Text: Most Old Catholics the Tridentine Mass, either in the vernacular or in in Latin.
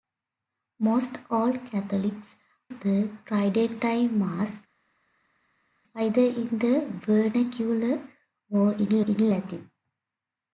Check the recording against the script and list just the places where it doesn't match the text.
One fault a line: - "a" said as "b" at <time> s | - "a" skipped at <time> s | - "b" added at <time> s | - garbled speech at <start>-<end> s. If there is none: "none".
none